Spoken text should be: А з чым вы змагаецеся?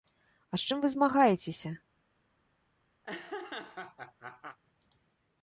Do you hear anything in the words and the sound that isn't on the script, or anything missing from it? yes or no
yes